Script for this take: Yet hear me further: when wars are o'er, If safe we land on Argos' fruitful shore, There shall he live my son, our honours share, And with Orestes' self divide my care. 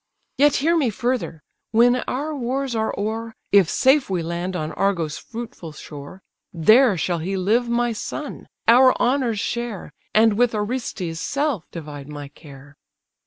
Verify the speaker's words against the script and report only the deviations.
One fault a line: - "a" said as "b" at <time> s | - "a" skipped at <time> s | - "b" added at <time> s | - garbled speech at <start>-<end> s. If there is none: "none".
- "our" added at 2.1 s